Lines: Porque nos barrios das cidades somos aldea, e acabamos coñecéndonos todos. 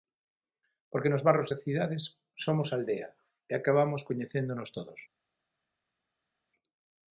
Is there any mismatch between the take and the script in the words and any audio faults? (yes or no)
no